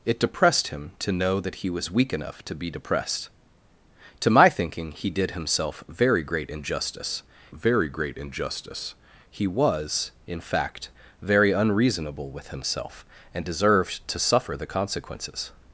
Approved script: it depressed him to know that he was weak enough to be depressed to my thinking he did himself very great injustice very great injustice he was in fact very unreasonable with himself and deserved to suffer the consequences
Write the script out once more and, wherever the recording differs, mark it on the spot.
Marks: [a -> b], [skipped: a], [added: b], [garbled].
it depressed him to know that he was weak enough to be depressed to my thinking he did himself very great injustice very great injustice he was in fact very unreasonable with himself and deserved to suffer the consequences